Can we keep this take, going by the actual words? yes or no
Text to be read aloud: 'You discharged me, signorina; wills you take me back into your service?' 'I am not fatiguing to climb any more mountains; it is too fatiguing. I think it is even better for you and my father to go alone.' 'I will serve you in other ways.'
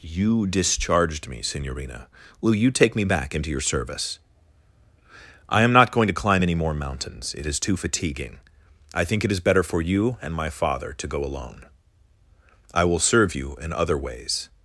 no